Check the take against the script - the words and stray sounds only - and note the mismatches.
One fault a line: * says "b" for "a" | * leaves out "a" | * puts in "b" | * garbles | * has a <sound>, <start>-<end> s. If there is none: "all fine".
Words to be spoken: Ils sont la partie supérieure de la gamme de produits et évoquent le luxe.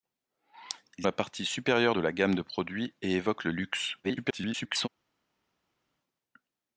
* leaves out "sont"
* garbles